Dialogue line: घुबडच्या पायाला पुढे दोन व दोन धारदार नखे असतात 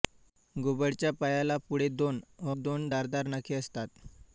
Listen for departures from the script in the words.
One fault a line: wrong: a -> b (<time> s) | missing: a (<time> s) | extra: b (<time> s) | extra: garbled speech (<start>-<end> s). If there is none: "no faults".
no faults